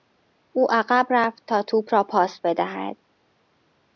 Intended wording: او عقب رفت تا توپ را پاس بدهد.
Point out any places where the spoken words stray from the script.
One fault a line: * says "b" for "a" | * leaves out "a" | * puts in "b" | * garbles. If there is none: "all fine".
all fine